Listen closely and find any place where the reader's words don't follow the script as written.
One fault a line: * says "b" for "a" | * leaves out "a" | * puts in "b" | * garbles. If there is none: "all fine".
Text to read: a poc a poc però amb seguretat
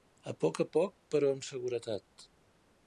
all fine